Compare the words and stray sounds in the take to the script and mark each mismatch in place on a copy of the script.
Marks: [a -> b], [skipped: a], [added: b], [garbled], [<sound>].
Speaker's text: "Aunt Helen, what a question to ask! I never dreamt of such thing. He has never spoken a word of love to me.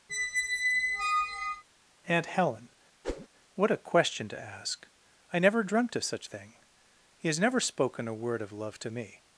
[squeak] "Aunt Helen, [whoosh] what a question to ask! I never dreamt of such thing. He has never spoken a word of love to me.